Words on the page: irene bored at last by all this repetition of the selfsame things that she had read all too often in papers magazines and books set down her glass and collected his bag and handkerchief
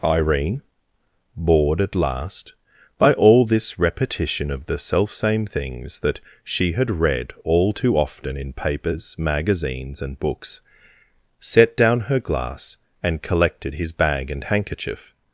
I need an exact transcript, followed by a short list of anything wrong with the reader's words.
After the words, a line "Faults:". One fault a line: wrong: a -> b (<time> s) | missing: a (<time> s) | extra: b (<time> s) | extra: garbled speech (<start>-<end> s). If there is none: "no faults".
irene bored at last by all this repetition of the selfsame things that she had read all too often in papers magazines and books set down her glass and collected his bag and handkerchief
Faults:
no faults